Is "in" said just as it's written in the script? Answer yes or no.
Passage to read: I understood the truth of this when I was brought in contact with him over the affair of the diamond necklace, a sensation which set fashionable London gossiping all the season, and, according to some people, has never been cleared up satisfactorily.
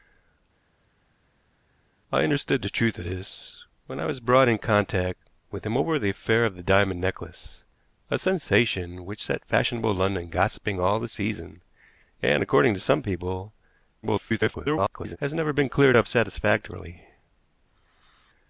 yes